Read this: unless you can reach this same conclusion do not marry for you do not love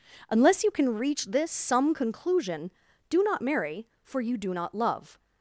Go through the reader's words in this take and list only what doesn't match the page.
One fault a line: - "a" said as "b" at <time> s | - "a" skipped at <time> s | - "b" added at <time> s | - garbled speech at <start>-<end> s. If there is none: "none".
- "same" said as "some" at 1.5 s